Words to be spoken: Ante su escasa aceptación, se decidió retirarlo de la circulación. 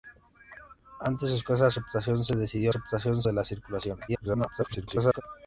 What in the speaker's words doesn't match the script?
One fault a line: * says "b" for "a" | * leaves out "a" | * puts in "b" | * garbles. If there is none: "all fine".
* says "aceptación" for "retirarlo"
* garbles